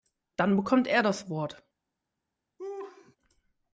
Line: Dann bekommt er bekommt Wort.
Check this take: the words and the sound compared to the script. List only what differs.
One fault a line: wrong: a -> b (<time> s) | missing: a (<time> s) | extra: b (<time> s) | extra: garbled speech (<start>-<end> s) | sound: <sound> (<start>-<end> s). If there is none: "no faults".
wrong: bekommt -> das (1.0 s)
sound: laugh (2.6-3.2 s)